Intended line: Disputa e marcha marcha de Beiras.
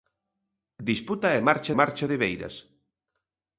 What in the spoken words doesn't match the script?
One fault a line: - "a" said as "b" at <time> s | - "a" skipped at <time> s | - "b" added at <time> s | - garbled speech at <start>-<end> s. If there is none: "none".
none